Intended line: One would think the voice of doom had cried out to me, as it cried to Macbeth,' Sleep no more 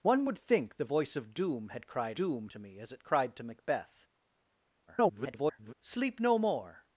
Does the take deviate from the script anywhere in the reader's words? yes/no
yes